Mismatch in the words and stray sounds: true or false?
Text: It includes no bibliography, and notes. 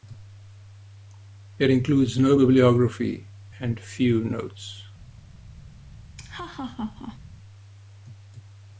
true